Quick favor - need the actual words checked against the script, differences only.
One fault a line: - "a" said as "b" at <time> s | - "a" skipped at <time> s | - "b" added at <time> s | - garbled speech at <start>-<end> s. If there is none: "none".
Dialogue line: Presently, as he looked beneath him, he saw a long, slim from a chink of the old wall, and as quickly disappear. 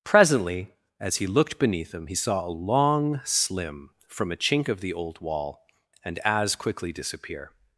none